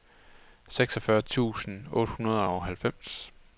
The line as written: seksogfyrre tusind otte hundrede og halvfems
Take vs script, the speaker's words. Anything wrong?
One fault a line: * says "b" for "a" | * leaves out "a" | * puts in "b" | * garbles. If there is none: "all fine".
all fine